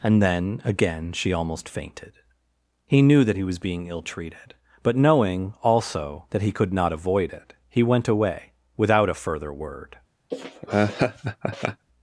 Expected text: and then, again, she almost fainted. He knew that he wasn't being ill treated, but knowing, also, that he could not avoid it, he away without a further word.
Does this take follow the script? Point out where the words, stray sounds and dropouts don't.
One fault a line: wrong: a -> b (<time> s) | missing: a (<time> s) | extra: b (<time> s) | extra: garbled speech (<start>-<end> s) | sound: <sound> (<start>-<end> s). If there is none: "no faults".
wrong: wasn't -> was (3.4 s)
extra: went (7.8 s)
sound: laugh (10.3-11.9 s)